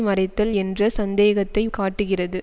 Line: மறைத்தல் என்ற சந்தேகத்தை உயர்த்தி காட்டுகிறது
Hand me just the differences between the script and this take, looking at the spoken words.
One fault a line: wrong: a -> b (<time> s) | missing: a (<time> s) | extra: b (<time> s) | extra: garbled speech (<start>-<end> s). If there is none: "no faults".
missing: உயர்த்தி (1.6 s)